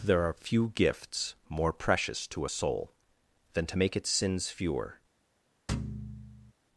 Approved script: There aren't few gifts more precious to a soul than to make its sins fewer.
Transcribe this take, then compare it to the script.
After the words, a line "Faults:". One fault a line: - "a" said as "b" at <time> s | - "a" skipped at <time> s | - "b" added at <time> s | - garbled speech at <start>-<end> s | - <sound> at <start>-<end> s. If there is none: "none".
There are few gifts more precious to a soul than to make its sins fewer.
Faults:
- "aren't" said as "are" at 0.2 s
- thud at 5.7-6.5 s